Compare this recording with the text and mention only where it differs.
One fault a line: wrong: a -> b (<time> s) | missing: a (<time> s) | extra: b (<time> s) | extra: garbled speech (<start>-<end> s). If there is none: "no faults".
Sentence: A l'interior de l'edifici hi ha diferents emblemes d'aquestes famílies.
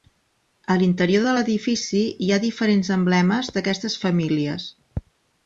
no faults